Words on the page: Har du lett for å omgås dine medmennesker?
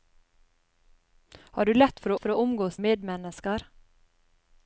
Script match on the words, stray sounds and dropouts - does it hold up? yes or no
no